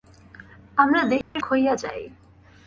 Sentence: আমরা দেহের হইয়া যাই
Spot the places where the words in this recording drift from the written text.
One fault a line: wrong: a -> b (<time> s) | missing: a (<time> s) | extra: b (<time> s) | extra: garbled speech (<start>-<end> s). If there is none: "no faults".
no faults